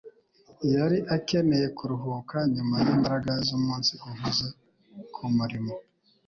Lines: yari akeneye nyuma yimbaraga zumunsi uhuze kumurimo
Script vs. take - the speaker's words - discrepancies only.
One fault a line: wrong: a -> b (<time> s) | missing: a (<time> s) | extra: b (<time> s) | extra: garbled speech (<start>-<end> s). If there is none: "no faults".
extra: kuruhuka (1.8 s)